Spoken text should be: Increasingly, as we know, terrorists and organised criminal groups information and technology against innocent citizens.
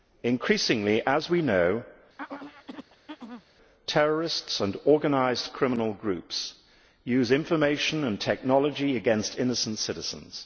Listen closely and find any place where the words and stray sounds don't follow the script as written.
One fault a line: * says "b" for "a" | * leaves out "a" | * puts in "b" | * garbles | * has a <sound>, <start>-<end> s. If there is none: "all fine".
* has a throat clearing, 2.2-3.4 s
* puts in "use"